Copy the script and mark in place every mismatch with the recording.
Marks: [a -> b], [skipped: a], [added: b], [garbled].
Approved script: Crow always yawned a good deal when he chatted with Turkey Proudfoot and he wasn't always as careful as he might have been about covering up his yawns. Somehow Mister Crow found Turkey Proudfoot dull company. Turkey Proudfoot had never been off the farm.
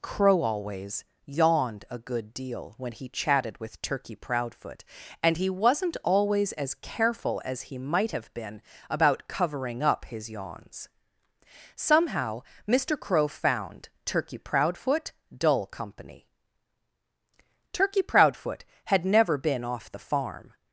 Crow always yawned a good deal when he chatted with Turkey Proudfoot and he wasn't always as careful as he might have been about covering up his yawns. Somehow Mister Crow found Turkey Proudfoot dull company. Turkey Proudfoot had never been off the farm.